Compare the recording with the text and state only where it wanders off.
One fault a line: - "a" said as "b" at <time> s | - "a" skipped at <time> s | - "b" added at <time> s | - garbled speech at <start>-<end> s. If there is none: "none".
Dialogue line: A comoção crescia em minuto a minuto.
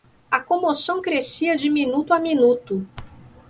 - "em" said as "de" at 1.5 s